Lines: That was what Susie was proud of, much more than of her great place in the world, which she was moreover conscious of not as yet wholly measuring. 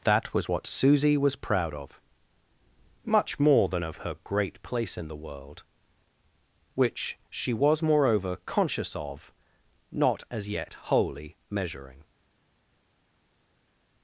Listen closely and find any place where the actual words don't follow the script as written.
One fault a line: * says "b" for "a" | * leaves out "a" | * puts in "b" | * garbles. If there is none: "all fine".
all fine